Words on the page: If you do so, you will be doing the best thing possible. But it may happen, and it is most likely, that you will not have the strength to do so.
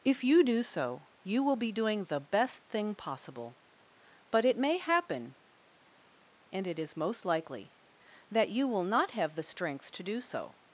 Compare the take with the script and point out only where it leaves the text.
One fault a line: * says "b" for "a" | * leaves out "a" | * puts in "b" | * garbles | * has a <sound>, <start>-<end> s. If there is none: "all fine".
all fine